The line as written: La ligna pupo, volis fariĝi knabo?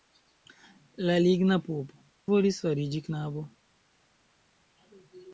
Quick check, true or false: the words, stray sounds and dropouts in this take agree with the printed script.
true